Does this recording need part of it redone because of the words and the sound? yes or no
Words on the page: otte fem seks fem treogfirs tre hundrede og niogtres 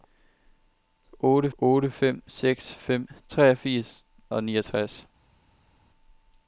yes